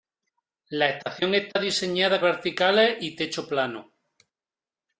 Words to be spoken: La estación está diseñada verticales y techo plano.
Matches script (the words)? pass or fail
pass